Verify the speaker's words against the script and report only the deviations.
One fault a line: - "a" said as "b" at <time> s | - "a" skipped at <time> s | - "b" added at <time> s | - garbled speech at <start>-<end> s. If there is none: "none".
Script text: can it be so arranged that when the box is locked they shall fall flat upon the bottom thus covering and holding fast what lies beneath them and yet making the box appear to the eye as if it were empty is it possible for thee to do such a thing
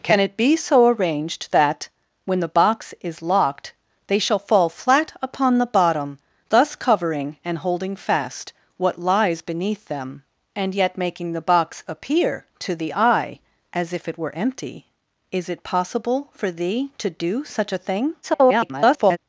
- garbled speech at 18.2-19.2 s